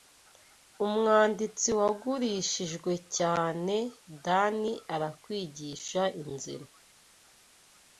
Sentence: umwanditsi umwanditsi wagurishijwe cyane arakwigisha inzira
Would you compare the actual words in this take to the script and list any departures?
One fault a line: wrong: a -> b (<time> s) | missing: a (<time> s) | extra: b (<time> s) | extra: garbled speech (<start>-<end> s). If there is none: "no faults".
missing: umwanditsi (1.7 s)
extra: dani (4.2 s)